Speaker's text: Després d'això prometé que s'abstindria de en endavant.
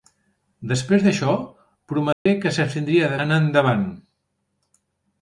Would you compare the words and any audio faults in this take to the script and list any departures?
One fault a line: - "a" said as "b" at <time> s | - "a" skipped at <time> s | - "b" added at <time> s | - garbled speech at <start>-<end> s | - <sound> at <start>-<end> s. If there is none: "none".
- dropout at 2.1-2.3 s